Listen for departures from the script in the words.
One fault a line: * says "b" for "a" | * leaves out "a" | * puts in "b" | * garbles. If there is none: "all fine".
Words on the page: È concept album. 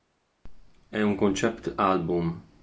* puts in "un"